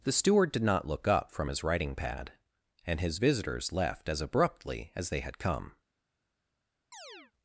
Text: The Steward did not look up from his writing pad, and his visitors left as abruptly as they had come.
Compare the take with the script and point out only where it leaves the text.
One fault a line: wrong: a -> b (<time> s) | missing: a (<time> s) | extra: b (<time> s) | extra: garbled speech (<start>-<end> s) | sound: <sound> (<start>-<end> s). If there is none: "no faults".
sound: chirp (6.9-7.3 s)